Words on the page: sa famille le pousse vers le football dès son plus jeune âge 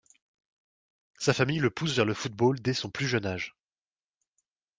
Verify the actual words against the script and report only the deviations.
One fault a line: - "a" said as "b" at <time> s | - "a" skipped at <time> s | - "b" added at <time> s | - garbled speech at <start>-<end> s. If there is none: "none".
none